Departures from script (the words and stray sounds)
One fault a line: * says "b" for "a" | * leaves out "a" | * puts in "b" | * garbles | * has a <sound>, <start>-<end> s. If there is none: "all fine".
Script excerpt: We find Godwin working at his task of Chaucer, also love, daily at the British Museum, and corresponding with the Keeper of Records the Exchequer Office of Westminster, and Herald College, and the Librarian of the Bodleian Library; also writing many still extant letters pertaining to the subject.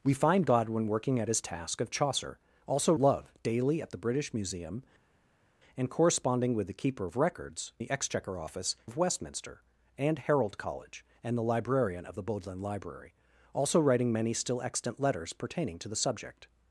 all fine